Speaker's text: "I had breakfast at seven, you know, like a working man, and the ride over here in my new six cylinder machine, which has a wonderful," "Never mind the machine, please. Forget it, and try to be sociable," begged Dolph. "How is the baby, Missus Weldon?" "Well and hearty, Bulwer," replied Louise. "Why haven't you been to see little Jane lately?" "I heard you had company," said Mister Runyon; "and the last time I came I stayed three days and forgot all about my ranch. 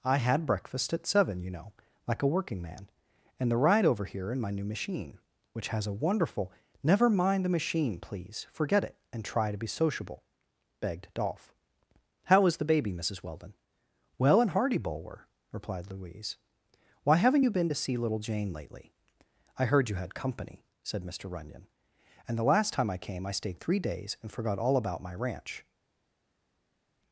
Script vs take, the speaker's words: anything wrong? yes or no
yes